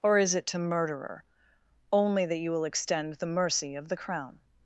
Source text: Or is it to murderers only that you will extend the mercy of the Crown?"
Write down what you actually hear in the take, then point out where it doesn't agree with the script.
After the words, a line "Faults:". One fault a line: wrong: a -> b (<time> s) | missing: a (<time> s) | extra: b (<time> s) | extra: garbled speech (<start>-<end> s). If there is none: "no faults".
Or is it to murderer only that you will extend the mercy of the Crown?"
Faults:
wrong: murderers -> murderer (0.6 s)